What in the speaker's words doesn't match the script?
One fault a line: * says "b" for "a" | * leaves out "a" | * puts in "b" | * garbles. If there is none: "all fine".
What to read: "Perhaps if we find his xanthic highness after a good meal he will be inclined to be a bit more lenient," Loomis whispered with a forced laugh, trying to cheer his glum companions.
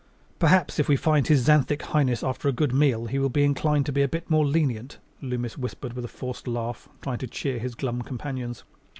all fine